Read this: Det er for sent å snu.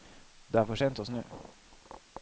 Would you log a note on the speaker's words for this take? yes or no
no